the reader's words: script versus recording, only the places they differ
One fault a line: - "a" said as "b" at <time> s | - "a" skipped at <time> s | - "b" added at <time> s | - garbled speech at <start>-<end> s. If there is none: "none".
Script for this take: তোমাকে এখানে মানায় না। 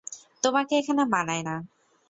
none